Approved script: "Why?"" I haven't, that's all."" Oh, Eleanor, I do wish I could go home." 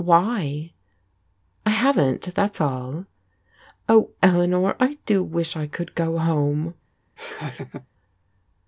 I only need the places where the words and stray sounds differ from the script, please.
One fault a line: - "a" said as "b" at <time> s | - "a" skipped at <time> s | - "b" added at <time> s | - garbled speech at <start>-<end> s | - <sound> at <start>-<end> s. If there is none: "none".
- laugh at 7.2-7.9 s